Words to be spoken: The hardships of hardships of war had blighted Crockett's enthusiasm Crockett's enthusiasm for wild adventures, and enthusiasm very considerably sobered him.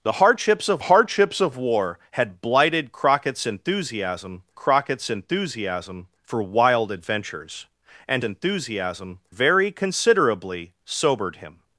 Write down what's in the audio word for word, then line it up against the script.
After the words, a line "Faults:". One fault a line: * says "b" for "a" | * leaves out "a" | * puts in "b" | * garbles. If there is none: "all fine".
The hardships of hardships of war had blighted Crockett's enthusiasm Crockett's enthusiasm for wild adventures, and enthusiasm very considerably sobered him.
Faults:
all fine